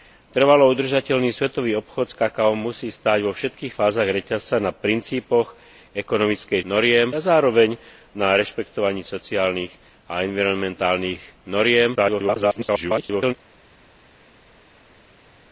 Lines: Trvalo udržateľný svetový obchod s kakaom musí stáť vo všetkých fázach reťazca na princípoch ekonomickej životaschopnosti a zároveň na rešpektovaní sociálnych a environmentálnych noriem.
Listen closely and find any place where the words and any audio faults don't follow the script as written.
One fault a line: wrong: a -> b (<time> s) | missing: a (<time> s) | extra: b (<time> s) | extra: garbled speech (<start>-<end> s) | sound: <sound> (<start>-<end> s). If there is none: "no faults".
wrong: životaschopnosti -> noriem (6.7 s)
extra: garbled speech (11.9-13.3 s)